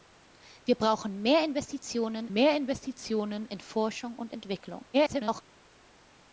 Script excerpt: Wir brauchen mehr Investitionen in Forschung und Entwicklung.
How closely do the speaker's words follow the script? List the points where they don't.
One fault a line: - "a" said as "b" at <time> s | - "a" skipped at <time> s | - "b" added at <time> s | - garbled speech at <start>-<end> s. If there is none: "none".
- "mehr Investitionen" added at 2.3 s
- garbled speech at 4.9-5.4 s